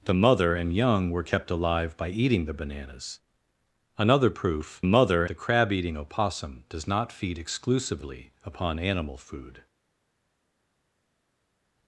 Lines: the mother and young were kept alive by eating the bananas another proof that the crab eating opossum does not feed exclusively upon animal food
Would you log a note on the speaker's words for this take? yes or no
yes